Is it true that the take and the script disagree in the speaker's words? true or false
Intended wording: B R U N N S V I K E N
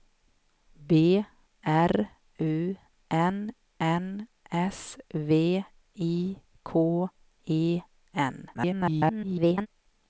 true